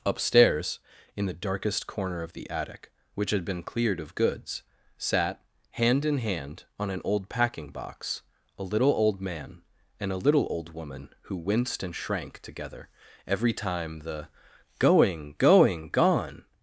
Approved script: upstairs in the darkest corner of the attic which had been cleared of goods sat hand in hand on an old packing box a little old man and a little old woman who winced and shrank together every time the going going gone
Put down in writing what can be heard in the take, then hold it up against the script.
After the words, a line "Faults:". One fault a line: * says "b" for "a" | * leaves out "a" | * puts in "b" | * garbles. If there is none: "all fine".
upstairs in the darkest corner of the attic which had been cleared of goods sat hand in hand on an old packing box a little old man and a little old woman who winced and shrank together every time the going going gone
Faults:
all fine